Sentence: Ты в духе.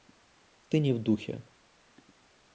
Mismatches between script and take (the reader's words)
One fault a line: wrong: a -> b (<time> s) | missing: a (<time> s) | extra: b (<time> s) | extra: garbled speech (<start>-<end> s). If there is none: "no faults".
extra: не (0.8 s)